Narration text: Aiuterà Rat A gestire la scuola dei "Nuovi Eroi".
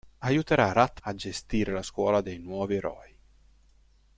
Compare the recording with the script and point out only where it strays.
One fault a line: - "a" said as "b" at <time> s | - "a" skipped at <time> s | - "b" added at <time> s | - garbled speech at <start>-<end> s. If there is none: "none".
none